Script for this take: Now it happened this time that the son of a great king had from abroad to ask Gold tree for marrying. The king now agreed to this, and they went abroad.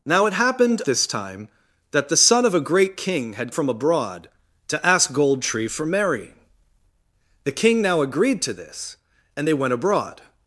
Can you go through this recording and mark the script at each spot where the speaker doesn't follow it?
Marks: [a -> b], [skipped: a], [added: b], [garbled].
Now it happened this time that the son of a great king had from abroad to ask Gold tree for marrying. The king now agreed to this, and they went abroad.